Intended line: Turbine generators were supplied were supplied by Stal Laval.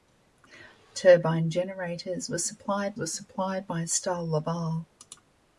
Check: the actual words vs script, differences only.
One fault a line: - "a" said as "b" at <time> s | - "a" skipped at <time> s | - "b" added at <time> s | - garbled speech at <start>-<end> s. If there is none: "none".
none